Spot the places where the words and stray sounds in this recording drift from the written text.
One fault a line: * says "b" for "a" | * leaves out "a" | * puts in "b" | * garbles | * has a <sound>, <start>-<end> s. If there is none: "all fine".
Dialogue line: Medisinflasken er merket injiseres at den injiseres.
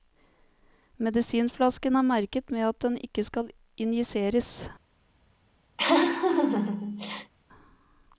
* says "med" for "injiseres"
* puts in "ikke skal"
* has a laugh, 5.8-7.3 s